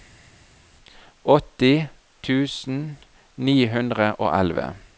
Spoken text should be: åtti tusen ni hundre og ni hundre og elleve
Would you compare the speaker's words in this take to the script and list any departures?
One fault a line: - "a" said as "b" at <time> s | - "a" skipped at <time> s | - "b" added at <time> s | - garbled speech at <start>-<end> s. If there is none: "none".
- "ni hundre og" skipped at 4.3 s